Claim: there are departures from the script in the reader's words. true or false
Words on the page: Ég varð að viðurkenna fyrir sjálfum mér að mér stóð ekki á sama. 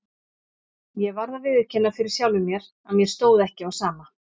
false